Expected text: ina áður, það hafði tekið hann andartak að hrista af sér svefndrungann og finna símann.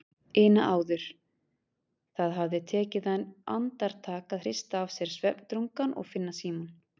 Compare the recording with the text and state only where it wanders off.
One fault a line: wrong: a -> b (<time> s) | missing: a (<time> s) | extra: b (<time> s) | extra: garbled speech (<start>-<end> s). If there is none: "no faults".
no faults